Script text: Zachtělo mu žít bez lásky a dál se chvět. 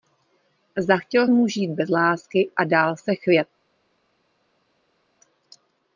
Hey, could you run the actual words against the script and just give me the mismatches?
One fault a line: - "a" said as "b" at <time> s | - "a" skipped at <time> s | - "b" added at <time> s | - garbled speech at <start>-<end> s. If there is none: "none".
none